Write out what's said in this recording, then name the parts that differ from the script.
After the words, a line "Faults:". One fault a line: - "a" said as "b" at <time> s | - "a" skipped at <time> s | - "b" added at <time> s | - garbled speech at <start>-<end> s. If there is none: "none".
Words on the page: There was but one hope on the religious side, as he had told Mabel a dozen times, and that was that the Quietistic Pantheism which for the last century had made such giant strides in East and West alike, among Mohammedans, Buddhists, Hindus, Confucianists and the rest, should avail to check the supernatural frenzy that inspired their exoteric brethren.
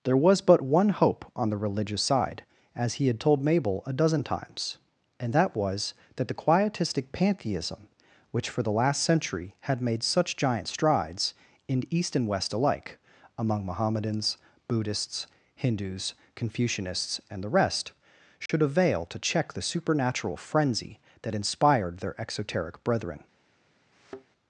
There was but one hope on the religious side, as he had told Mabel a dozen times, and that was that the Quietistic Pantheism which for the last century had made such giant strides in East and West alike, among Mohammedans, Buddhists, Hindus, Confucianists and the rest, should avail to check the supernatural frenzy that inspired their exoteric brethren.
Faults:
none